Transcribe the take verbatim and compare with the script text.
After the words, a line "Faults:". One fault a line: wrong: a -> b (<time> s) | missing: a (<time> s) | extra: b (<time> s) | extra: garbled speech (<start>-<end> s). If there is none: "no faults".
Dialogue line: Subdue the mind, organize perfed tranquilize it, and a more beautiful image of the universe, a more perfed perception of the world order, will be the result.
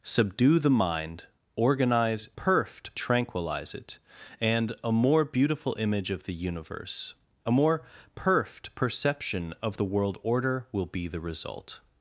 Subdue the mind, organize perfed tranquilize it, and a more beautiful image of the universe, a more perfed perception of the world order, will be the result.
Faults:
no faults